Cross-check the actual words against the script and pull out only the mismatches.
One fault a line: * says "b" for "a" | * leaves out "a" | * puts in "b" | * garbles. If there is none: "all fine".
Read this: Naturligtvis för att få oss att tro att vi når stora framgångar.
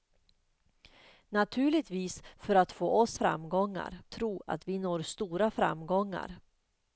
* says "framgångar" for "att"